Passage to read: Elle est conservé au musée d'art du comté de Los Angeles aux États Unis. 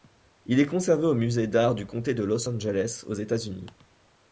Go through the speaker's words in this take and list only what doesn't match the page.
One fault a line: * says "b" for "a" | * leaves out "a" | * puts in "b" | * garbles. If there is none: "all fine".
* says "Il" for "Elle"